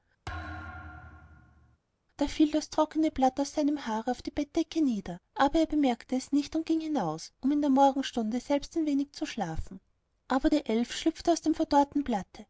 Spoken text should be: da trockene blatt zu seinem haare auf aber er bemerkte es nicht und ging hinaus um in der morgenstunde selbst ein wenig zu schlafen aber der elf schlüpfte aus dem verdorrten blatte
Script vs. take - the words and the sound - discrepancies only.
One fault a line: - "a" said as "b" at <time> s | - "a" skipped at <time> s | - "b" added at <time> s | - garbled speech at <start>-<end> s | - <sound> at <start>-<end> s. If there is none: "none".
- thud at 0.3-1.8 s
- "fiel das" added at 2.3 s
- "zu" said as "aus" at 3.4 s
- "die bettdecke nieder" added at 4.2 s